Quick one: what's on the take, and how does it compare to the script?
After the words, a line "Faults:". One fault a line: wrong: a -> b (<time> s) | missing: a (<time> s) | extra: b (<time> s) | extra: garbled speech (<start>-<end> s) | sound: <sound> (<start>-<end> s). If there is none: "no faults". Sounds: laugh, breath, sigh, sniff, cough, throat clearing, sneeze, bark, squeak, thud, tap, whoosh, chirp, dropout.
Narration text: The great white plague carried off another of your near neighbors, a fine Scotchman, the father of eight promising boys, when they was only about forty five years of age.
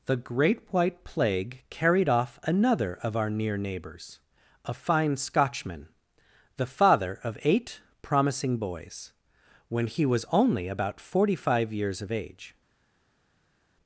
The great white plague carried off another of our near neighbors, a fine Scotchman, the father of eight promising boys, when he was only about forty five years of age.
Faults:
wrong: your -> our (3.1 s)
wrong: they -> he (9.8 s)